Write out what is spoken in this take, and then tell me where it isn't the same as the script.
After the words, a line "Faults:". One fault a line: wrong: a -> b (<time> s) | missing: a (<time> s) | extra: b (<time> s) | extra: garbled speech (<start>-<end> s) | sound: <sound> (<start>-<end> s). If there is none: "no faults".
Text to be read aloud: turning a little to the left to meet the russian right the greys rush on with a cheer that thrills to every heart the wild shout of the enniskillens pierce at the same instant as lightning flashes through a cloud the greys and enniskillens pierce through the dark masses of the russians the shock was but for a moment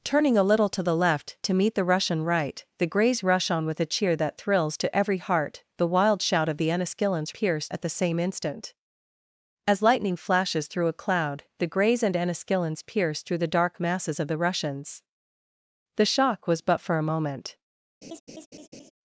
turning a little to the left to meet the russian right the greys rush on with a cheer that thrills to every heart the wild shout of the enniskillens pierce at the same instant as lightning flashes through a cloud the greys and enniskillens pierce through the dark masses of the russians the shock was but for a moment
Faults:
sound: laugh (18.0-18.9 s)